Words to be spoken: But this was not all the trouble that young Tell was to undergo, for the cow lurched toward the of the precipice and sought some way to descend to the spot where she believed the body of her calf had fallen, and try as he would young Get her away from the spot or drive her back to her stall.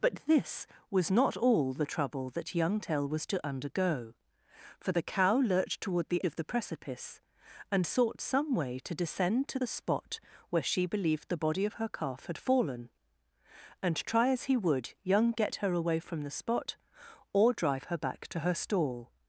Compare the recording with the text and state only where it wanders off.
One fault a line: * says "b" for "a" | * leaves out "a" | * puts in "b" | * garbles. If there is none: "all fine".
all fine